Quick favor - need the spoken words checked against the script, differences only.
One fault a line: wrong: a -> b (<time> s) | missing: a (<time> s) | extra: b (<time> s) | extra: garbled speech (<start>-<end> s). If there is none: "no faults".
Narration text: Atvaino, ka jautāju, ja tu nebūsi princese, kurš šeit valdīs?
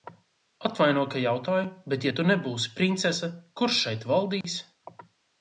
extra: bet (1.9 s)